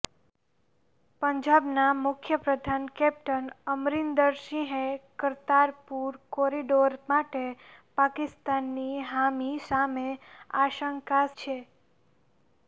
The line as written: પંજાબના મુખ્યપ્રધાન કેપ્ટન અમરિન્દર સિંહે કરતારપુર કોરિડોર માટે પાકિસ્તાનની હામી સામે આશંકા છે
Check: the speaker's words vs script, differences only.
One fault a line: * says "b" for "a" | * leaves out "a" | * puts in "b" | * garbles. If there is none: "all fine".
all fine